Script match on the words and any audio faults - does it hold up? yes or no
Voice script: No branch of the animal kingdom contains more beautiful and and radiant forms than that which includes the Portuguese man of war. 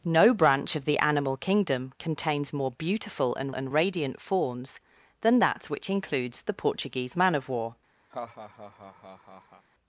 no